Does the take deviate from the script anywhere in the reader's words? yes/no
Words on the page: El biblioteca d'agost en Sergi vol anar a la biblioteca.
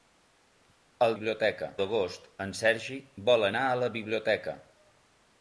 no